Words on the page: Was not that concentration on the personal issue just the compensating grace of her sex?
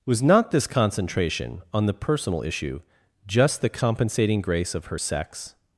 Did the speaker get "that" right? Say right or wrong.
wrong